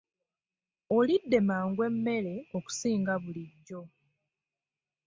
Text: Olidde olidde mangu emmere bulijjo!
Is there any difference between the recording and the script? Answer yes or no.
yes